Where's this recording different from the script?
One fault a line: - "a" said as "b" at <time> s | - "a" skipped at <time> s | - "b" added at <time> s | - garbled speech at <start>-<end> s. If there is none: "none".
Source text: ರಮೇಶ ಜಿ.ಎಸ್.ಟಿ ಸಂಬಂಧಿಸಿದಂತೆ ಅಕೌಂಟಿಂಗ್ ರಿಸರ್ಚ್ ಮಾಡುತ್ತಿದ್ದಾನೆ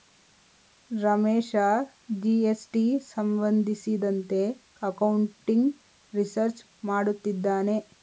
none